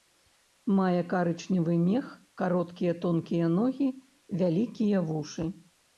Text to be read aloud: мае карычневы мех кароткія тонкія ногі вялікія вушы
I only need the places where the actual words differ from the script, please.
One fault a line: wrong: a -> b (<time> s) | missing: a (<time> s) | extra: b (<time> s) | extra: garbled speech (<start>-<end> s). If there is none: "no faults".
no faults